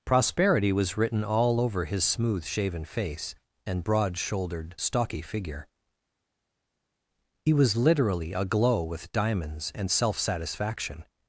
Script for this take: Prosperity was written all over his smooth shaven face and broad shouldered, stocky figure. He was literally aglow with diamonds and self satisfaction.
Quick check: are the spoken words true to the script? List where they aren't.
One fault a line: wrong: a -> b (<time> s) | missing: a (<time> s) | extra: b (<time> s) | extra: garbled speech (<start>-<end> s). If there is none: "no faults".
no faults